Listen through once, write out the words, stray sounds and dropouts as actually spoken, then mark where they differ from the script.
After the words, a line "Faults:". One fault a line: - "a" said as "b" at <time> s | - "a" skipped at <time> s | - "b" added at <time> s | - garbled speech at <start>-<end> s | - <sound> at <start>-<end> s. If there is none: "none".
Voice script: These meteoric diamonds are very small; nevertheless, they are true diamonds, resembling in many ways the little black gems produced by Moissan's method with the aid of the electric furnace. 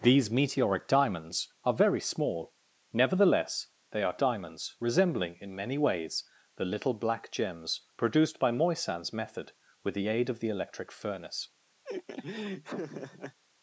These meteoric diamonds are very small; nevertheless, they are diamonds, resembling in many ways the little black gems produced by Moissan's method with the aid of the electric furnace.
Faults:
- "true" skipped at 4.2 s
- laugh at 11.8-13.4 s